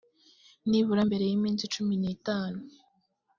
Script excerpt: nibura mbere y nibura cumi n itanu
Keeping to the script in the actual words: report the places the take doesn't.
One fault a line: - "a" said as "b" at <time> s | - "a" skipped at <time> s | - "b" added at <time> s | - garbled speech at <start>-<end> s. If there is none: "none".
- "nibura" said as "iminsi" at 1.4 s